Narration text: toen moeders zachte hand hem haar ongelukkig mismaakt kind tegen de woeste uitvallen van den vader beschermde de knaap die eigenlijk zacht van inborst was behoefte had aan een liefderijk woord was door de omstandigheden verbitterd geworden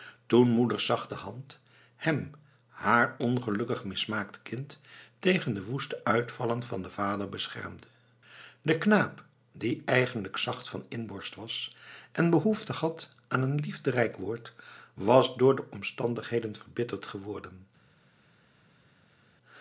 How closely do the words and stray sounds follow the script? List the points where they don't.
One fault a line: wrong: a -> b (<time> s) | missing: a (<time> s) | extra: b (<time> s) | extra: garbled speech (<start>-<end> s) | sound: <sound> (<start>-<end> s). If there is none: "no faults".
extra: en (12.1 s)